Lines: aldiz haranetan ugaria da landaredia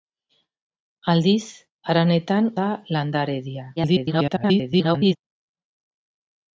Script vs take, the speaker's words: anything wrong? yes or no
yes